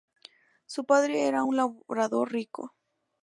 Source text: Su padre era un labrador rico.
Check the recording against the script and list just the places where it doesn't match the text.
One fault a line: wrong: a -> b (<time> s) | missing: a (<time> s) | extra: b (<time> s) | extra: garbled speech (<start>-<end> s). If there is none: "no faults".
no faults